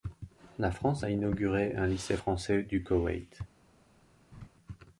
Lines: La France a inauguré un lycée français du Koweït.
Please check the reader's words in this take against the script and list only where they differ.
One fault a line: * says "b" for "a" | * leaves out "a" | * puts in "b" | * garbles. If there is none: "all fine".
all fine